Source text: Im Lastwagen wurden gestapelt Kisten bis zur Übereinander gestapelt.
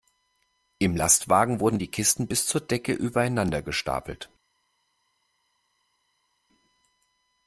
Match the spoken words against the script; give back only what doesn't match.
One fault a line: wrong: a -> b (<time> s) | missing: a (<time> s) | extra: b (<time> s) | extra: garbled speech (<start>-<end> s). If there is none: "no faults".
wrong: gestapelt -> die (1.8 s)
extra: Decke (2.6 s)